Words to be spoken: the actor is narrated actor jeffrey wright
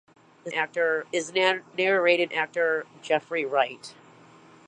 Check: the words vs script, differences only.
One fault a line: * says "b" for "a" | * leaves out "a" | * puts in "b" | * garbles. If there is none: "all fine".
all fine